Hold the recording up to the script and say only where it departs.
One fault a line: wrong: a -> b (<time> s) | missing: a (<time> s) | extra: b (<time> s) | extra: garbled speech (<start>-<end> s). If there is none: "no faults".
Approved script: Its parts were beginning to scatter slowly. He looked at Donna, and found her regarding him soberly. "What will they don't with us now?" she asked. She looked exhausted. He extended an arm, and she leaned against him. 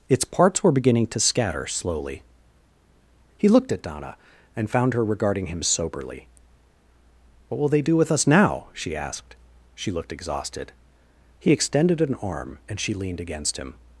wrong: don't -> do (7.8 s)